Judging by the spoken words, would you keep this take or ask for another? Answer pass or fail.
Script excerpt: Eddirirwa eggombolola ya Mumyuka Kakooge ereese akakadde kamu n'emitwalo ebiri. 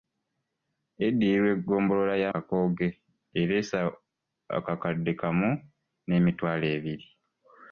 fail